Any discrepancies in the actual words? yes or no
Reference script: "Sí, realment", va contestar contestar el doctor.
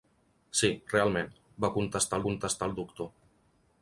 no